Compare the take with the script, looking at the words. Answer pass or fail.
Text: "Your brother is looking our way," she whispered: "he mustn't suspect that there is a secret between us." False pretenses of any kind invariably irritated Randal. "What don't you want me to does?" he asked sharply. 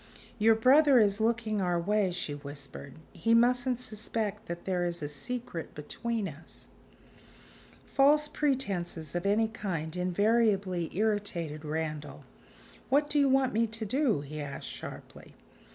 fail